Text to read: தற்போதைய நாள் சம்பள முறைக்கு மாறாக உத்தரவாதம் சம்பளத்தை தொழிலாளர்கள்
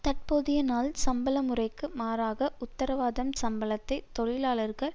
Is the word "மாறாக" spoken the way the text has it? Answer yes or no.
yes